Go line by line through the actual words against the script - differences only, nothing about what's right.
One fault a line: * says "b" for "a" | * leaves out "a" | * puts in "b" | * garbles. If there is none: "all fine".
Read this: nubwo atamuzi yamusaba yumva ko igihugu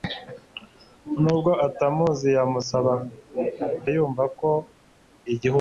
all fine